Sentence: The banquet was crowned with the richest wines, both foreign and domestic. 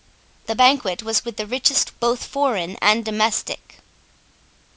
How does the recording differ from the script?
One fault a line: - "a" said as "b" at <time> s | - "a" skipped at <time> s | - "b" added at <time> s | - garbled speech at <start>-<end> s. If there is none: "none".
- "crowned" skipped at 1.2 s
- "wines" skipped at 1.9 s